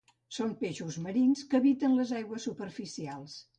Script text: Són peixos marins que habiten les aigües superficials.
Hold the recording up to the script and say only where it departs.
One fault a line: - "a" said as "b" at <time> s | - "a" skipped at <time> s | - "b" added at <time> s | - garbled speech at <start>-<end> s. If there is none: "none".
none